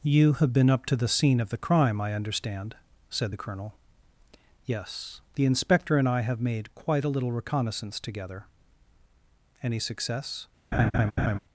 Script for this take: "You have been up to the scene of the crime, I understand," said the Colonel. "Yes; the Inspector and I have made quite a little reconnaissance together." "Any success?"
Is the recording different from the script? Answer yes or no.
no